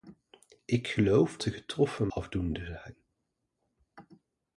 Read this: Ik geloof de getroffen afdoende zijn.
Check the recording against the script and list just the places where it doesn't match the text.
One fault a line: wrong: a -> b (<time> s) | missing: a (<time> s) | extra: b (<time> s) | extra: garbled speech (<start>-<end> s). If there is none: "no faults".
no faults